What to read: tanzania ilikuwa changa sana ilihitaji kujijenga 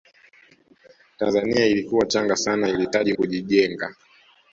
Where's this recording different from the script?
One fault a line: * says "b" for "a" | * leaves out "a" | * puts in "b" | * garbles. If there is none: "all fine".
all fine